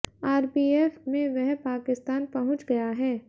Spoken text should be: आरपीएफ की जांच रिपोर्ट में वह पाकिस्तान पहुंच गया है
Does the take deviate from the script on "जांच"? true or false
true